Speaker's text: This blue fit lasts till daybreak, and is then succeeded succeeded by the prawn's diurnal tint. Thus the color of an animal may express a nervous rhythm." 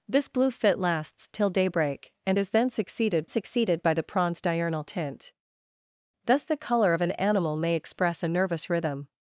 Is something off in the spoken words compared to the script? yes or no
no